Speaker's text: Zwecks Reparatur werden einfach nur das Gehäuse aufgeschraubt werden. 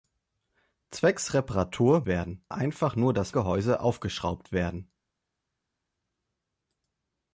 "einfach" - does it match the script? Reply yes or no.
yes